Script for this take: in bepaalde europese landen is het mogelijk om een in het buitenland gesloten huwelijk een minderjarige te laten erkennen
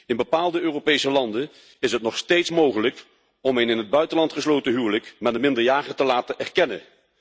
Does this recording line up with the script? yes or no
no